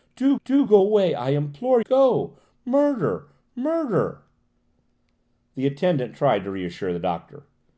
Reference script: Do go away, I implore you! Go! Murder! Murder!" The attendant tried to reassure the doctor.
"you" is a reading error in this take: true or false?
true